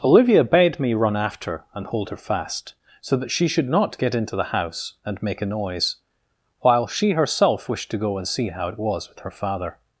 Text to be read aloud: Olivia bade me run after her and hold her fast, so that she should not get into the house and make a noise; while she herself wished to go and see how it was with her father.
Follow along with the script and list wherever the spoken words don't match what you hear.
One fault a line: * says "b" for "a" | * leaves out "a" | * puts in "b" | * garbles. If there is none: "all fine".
* leaves out "her"